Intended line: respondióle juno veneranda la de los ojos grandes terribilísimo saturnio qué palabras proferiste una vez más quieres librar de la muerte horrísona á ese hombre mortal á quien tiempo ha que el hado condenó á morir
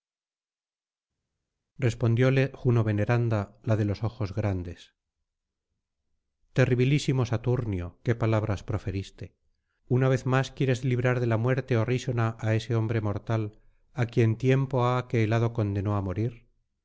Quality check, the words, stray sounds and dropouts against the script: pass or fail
pass